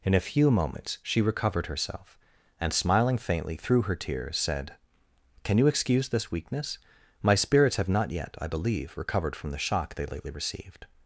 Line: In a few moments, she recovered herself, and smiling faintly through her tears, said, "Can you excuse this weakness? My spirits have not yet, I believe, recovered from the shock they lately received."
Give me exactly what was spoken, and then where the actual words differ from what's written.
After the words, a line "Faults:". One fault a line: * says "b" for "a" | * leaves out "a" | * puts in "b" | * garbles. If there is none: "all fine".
In a few moments, she recovered herself, and smiling faintly through her tears, said, "Can you excuse this weakness? My spirits have not yet, I believe, recovered from the shock they lately received."
Faults:
all fine